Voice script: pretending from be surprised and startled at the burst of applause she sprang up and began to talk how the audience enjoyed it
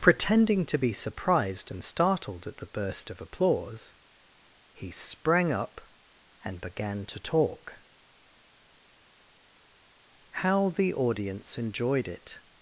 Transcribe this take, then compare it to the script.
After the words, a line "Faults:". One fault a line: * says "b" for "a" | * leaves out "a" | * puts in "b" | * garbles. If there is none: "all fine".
pretending to be surprised and startled at the burst of applause he sprang up and began to talk how the audience enjoyed it
Faults:
* says "to" for "from"
* says "he" for "she"